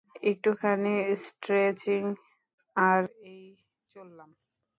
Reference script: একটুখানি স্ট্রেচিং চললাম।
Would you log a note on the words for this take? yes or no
yes